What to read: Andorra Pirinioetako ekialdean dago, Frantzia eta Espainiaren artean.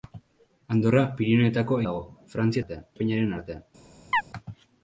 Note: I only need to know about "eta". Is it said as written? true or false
false